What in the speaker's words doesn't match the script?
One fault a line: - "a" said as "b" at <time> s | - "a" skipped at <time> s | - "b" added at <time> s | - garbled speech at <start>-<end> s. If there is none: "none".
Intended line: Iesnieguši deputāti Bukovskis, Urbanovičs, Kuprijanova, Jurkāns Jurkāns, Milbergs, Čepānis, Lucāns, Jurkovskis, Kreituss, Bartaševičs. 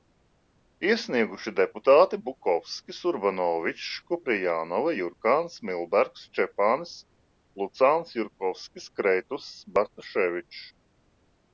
- "Jurkāns" skipped at 5.6 s